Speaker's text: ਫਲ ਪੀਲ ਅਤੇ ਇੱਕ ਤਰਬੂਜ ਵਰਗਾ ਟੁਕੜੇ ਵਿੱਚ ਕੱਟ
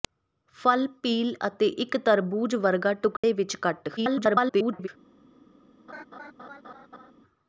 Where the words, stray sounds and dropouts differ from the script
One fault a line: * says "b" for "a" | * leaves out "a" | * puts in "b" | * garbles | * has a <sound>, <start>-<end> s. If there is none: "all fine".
* has a dropout, 3.2-3.2 s
* garbles
* has a laugh, 5.9-7.1 s